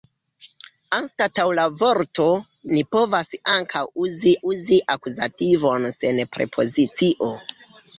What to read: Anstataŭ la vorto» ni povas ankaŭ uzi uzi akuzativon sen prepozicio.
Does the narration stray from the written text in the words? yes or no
no